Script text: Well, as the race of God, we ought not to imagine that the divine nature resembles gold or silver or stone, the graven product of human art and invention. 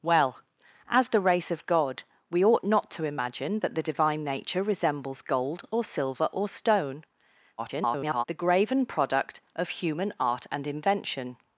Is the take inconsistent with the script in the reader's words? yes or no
yes